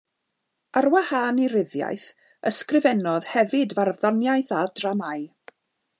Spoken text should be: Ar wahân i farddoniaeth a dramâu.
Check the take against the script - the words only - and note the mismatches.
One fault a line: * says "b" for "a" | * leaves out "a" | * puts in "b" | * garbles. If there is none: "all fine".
* puts in "ryddiaith ysgrifennodd hefyd"